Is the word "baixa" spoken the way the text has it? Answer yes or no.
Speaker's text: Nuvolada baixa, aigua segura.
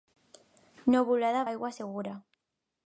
no